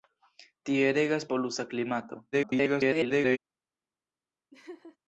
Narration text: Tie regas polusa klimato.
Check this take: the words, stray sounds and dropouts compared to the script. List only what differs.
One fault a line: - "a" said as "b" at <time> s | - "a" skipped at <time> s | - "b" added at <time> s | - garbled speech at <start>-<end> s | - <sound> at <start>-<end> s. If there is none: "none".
- garbled speech at 2.3-3.4 s
- laugh at 4.5-5.0 s